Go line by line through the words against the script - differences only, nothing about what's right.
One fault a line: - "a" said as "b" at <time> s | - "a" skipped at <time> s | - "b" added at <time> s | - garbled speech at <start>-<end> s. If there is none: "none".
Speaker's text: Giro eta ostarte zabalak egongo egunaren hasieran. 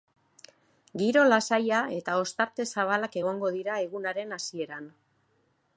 - "lasaia" added at 1.3 s
- "dira" added at 3.6 s